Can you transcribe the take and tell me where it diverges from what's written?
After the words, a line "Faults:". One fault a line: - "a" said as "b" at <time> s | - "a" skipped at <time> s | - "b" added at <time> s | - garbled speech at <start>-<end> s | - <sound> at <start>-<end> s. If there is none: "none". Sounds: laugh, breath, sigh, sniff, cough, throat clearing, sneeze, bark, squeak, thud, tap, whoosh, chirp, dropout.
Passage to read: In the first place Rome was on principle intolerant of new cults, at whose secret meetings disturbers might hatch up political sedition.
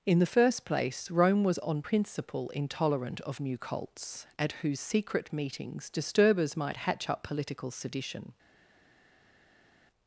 In the first place Rome was on principle intolerant of new cults, at whose secret meetings disturbers might hatch up political sedition.
Faults:
none